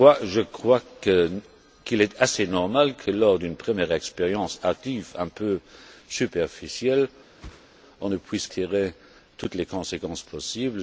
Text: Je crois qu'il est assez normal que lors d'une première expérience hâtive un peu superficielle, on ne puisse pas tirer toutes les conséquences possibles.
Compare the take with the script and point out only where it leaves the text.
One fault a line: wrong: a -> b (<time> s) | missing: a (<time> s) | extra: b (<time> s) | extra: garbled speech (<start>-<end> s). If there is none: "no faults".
missing: pas (8.5 s)